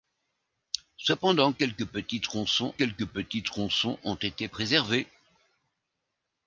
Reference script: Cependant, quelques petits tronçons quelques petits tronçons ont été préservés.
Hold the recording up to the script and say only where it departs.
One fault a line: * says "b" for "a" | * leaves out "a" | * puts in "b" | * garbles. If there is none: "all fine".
all fine